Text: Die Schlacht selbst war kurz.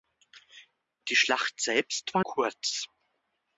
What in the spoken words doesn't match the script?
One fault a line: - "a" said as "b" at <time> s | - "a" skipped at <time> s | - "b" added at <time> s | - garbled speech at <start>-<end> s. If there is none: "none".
none